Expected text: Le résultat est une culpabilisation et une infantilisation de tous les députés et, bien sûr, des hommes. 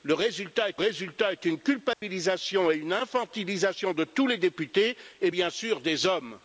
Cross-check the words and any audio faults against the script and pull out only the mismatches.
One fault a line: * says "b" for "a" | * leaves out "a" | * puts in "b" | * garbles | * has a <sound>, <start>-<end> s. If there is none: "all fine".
* puts in "résultat est"
* has a dropout, 1.9-2.0 s